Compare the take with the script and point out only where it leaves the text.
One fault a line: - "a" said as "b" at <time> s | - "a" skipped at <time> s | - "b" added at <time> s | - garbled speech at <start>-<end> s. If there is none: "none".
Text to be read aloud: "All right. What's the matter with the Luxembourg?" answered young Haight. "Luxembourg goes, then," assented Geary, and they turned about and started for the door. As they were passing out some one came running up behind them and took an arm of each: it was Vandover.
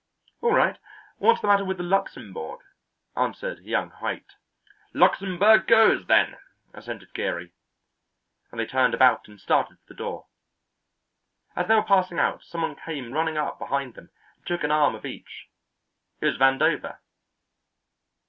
none